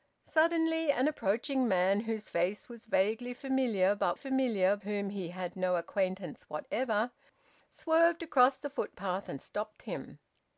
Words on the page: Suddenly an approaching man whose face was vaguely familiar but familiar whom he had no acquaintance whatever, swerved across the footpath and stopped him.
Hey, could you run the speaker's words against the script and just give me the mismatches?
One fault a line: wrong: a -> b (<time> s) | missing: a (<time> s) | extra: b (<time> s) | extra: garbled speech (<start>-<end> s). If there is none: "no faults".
no faults